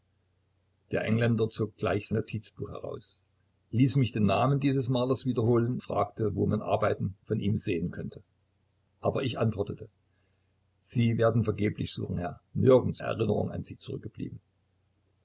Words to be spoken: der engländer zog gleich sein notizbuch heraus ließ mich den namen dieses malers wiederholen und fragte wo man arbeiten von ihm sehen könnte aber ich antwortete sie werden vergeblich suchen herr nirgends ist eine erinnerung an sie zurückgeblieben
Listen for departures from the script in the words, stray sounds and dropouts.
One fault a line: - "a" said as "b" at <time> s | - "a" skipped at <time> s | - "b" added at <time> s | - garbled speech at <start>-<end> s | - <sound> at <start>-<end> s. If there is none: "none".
- "sein" skipped at 2.1 s
- "und" skipped at 5.8 s
- "ist eine" skipped at 13.0 s